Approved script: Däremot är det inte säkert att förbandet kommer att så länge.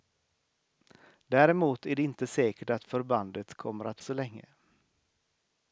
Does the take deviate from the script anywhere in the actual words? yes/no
no